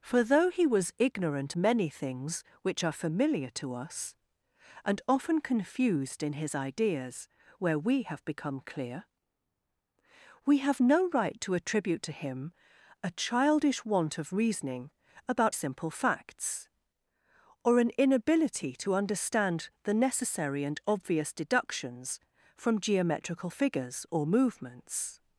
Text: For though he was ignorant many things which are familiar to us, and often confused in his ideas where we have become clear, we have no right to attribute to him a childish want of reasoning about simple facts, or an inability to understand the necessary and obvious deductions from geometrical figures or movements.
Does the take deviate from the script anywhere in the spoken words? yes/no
no